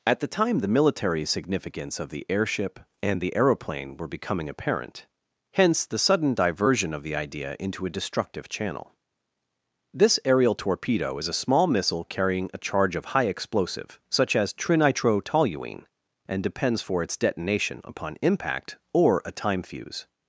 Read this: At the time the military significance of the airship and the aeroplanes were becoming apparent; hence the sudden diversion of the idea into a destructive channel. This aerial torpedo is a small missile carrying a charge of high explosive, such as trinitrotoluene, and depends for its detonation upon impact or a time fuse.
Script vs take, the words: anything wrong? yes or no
yes